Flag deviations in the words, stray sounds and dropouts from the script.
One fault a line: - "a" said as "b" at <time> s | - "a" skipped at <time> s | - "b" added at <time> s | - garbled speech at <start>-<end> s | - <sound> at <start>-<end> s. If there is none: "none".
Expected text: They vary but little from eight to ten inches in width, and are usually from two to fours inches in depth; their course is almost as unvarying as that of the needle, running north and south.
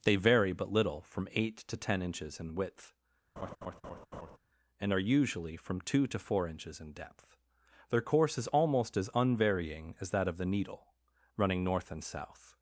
- laugh at 3.4-4.4 s
- "fours" said as "four" at 6.2 s